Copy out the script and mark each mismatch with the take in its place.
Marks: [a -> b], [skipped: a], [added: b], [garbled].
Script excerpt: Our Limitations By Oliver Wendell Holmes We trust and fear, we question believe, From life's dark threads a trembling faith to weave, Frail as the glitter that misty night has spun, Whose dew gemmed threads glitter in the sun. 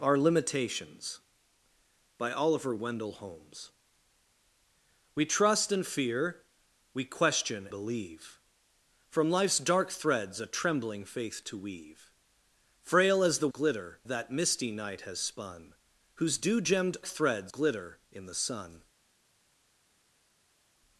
Our Limitations By Oliver Wendell Holmes We trust and fear, we question believe, From life's dark threads a trembling faith to weave, Frail as the glitter that misty night has spun, Whose dew gemmed threads glitter in the sun.